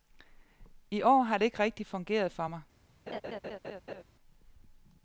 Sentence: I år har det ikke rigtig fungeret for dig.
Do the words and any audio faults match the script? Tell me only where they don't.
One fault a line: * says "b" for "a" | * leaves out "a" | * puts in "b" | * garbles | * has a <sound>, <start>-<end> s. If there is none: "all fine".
* says "mig" for "dig"
* has a laugh, 3.1-4.0 s